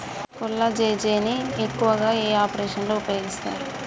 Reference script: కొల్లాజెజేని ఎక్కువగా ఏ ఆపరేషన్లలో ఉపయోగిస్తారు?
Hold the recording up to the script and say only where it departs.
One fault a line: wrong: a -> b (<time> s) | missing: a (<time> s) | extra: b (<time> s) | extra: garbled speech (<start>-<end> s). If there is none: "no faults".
no faults